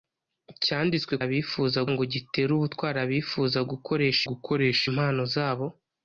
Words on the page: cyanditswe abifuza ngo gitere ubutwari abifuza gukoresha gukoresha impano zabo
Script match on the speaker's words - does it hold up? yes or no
yes